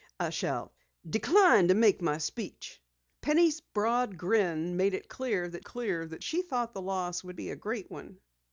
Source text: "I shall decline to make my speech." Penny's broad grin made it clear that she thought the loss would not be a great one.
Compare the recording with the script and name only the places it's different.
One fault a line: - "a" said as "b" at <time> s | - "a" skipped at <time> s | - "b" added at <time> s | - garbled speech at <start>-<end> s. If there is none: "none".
- "clear that" added at 5.6 s
- "not" skipped at 7.4 s